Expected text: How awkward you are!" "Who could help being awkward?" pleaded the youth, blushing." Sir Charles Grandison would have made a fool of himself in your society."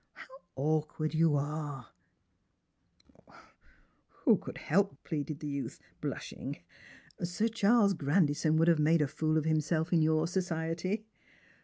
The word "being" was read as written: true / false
false